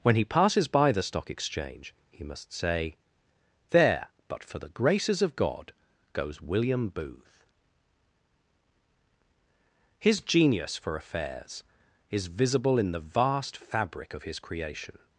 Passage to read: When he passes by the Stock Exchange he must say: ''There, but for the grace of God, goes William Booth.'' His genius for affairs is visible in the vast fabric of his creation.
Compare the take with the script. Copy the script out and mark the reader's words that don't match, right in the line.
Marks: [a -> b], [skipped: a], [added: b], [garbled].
When he passes by the Stock Exchange he must say: ''There, but for the [grace -> graces] of God, goes William Booth.'' His genius for affairs is visible in the vast fabric of his creation.